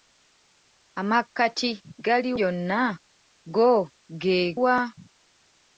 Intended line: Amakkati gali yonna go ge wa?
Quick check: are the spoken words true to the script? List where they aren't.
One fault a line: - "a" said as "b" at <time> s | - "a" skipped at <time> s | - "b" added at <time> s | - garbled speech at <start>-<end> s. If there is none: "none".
none